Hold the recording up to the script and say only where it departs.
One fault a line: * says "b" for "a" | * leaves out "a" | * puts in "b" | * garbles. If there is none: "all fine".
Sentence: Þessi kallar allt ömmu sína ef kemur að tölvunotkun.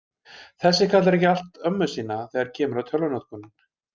* puts in "ekki"
* says "þegar" for "ef"